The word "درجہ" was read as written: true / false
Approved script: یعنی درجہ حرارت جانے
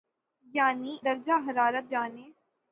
true